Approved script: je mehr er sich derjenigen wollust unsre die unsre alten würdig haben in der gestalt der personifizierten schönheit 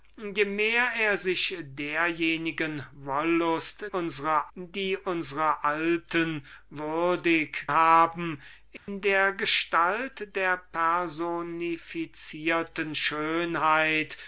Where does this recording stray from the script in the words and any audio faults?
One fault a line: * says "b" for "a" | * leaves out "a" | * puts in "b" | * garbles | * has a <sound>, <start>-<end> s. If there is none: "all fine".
* has a dropout, 8.8-8.9 s